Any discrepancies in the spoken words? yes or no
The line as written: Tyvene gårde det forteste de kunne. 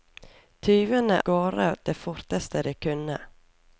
no